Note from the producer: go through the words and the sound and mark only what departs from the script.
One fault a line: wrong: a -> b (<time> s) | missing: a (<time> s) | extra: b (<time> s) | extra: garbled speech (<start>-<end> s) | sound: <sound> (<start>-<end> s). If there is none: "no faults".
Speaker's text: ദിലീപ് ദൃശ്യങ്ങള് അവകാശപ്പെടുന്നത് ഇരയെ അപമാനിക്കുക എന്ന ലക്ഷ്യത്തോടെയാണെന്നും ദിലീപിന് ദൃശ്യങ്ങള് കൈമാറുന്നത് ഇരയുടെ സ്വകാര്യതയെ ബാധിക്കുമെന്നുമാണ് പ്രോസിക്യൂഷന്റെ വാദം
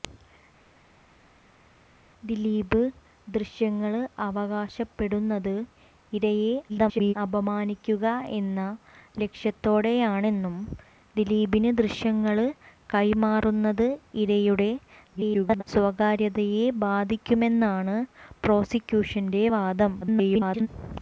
extra: garbled speech (6.7-7.1 s)
extra: garbled speech (15.1-15.6 s)
extra: garbled speech (20.0-20.7 s)